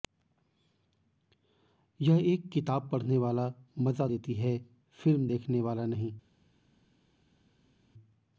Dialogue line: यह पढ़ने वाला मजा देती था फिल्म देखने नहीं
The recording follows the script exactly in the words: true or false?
false